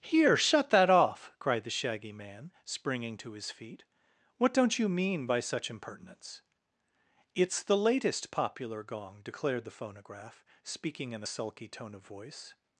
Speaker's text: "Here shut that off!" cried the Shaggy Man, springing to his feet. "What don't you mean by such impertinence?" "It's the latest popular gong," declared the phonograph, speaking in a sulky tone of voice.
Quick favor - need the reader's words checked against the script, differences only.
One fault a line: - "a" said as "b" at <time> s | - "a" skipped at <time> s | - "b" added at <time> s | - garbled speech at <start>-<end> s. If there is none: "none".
none